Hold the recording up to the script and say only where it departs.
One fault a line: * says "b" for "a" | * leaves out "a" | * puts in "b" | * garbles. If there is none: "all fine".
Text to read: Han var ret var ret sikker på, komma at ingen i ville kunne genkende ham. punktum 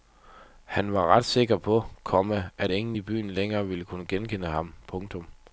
* leaves out "var ret"
* puts in "byen længere"